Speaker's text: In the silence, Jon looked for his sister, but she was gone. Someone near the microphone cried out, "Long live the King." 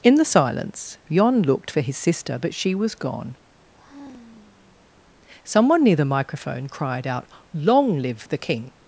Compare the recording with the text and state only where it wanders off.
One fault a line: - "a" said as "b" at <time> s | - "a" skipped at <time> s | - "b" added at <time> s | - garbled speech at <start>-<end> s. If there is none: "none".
none